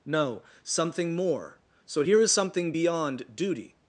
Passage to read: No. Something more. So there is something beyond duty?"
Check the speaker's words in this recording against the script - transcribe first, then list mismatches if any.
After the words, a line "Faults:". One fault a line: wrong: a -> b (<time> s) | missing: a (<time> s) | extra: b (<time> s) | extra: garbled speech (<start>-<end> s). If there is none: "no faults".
No. Something more. So here is something beyond duty?"
Faults:
wrong: there -> here (2.0 s)